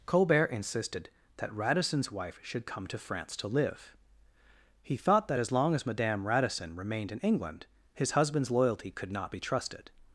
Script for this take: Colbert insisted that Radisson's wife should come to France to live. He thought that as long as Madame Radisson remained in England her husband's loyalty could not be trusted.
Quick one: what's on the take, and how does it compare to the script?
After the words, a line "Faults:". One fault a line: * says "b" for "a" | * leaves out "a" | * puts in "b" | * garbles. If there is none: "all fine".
Colbert insisted that Radisson's wife should come to France to live. He thought that as long as Madame Radisson remained in England his husband's loyalty could not be trusted.
Faults:
* says "his" for "her"